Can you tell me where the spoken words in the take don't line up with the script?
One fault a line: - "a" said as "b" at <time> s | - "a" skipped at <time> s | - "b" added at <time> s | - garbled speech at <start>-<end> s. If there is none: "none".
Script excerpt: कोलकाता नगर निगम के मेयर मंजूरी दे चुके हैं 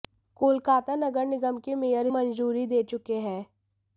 none